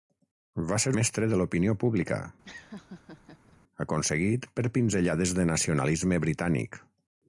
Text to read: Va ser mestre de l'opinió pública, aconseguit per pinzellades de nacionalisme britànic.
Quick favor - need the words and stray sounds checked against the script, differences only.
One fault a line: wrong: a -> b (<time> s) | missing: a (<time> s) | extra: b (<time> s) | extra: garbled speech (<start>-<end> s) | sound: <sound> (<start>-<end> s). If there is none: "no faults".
sound: laugh (2.4-3.6 s)